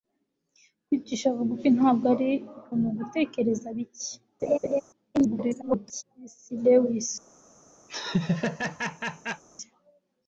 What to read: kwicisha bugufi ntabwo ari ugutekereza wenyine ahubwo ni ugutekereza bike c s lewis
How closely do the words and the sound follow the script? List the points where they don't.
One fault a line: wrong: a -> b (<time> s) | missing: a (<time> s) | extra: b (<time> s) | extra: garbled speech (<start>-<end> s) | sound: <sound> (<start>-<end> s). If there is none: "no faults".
missing: ugutekereza wenyine ahubwo (2.3 s)
sound: laugh (4.4-4.8 s)
extra: garbled speech (5.1-6.0 s)
sound: laugh (7.9-9.4 s)